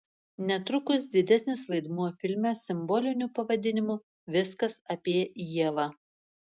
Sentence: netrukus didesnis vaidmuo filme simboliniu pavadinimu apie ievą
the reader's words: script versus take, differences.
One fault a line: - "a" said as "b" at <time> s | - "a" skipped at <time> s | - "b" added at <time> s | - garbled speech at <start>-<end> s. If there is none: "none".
- "viskas" added at 4.4 s